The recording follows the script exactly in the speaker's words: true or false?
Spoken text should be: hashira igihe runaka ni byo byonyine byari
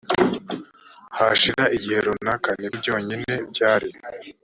false